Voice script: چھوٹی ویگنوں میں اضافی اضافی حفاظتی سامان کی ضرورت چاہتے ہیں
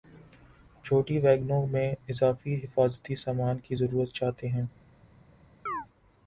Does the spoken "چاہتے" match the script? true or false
true